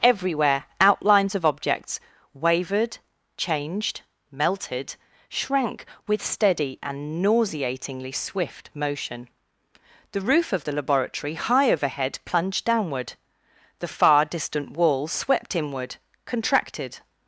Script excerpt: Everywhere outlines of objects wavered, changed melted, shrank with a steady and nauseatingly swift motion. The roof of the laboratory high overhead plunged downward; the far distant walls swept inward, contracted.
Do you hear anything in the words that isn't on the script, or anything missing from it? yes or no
yes